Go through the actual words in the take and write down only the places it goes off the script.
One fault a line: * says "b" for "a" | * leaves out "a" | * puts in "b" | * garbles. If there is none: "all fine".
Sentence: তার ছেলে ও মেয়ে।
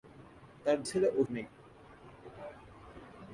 all fine